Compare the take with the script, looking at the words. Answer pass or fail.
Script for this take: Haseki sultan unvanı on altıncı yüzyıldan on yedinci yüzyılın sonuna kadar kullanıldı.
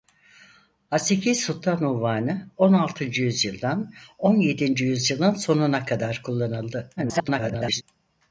fail